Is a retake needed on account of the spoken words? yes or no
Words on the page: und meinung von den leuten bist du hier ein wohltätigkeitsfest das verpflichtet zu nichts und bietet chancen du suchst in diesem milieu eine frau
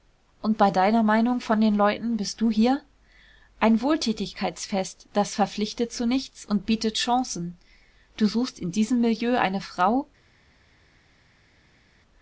yes